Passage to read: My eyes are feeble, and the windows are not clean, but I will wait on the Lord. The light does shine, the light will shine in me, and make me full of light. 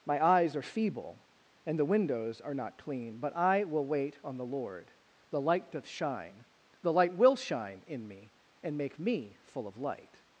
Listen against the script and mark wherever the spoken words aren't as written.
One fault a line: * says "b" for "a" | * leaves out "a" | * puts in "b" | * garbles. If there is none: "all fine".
* says "doth" for "does"